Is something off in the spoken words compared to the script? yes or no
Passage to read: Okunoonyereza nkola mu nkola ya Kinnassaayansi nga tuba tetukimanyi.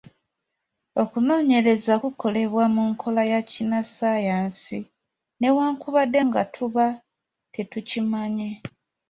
yes